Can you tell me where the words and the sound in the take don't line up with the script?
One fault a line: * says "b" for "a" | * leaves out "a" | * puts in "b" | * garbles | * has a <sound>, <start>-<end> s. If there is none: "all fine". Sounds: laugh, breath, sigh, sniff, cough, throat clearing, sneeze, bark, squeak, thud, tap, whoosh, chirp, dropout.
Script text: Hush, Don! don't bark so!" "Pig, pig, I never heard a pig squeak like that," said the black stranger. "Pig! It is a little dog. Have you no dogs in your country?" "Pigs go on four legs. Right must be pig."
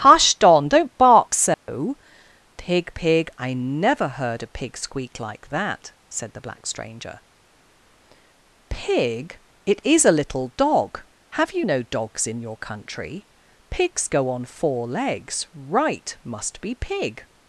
* has a dropout, 1.5-1.7 s